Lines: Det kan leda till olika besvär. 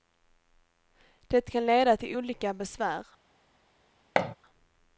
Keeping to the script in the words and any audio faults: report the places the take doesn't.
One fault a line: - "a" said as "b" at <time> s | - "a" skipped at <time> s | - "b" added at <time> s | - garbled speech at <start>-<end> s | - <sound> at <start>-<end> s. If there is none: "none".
- thud at 4.2-4.4 s